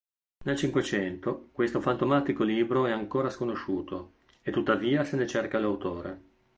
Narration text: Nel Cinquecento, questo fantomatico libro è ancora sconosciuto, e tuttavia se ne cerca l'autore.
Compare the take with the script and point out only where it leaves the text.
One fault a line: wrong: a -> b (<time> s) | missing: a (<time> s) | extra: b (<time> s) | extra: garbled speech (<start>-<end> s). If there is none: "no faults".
no faults